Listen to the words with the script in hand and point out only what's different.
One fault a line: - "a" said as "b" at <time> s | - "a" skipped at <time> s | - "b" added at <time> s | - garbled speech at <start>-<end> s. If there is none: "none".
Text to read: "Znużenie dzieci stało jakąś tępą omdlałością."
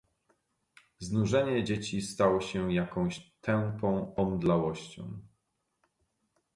- "się" added at 2.4 s